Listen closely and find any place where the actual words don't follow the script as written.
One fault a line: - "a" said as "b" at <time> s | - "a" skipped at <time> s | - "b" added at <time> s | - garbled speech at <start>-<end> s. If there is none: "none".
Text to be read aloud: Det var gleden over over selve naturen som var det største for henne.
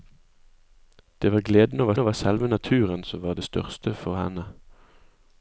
none